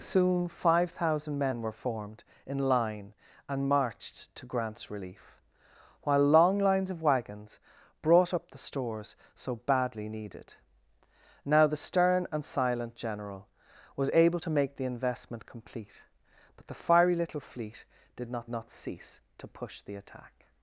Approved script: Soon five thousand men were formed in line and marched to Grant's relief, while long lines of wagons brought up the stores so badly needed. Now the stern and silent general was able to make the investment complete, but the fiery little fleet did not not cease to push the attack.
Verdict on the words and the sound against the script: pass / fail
pass